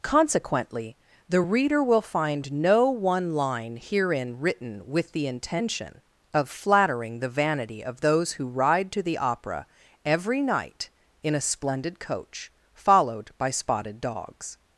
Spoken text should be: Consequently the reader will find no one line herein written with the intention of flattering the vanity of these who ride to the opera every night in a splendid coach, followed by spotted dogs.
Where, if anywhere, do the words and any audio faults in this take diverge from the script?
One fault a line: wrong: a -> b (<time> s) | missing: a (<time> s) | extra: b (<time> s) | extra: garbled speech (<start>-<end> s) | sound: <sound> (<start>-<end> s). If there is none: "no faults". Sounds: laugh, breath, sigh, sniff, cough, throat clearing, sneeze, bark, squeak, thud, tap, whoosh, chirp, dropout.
wrong: these -> those (8.0 s)